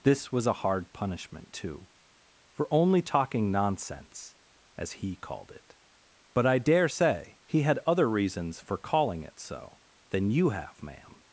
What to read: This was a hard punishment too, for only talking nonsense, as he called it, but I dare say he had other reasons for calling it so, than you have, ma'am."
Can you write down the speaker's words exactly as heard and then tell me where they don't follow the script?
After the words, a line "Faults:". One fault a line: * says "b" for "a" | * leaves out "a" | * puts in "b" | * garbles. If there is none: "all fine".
This was a hard punishment too, for only talking nonsense, as he called it, but I dare say he had other reasons for calling it so, than you have, ma'am."
Faults:
all fine